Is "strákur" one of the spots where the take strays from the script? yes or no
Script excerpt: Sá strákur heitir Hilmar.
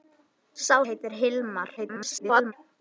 yes